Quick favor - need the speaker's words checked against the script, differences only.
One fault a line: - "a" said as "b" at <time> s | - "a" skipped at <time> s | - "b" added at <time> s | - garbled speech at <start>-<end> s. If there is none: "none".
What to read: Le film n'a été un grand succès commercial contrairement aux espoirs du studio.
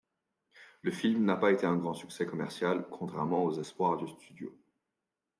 - "pas" added at 1.4 s